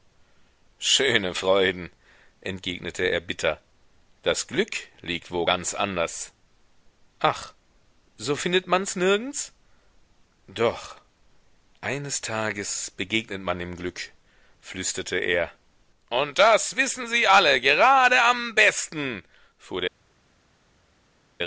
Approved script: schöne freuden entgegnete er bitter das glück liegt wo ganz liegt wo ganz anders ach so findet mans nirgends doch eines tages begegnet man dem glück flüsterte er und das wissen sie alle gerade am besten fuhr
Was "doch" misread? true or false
false